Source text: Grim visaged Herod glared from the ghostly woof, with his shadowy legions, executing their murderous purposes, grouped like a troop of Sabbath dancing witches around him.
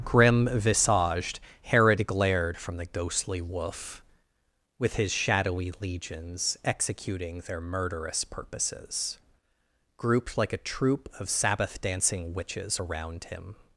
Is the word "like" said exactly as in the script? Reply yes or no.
yes